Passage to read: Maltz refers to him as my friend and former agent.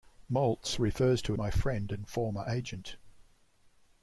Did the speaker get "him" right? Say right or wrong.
wrong